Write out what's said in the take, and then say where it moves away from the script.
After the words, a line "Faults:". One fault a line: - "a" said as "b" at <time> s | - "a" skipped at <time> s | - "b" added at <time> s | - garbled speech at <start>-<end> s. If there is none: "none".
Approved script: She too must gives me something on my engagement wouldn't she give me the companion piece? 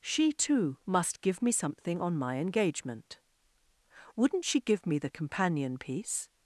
She too must give me something on my engagement wouldn't she give me the companion piece?
Faults:
- "gives" said as "give" at 1.2 s